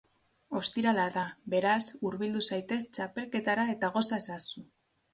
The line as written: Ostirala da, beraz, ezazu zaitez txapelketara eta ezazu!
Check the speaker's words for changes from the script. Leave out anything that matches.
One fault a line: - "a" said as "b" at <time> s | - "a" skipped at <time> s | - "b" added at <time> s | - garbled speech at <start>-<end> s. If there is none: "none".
- "ezazu" said as "hurbildu" at 2.1 s
- "goza" added at 4.0 s